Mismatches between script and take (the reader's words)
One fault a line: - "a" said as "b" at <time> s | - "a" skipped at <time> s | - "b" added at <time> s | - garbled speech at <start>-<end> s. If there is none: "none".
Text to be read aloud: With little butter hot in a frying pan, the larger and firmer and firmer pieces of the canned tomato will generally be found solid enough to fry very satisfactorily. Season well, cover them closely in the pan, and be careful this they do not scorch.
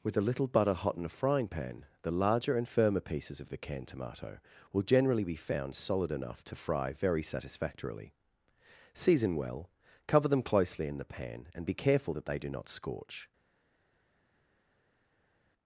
- "a" added at 0.2 s
- "and firmer" skipped at 3.0 s
- "this" said as "that" at 12.1 s